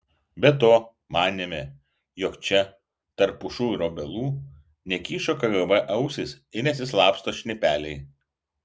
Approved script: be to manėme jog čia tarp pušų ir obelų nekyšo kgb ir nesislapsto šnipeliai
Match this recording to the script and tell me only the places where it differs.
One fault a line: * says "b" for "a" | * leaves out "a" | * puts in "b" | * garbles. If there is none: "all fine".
* puts in "ausys"